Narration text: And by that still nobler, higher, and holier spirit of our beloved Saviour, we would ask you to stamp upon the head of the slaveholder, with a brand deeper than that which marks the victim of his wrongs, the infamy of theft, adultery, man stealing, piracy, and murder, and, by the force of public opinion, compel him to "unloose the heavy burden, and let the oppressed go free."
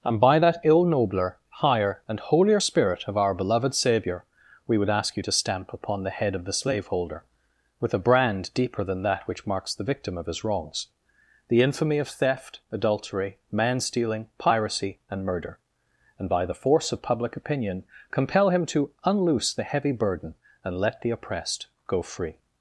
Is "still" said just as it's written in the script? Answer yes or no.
no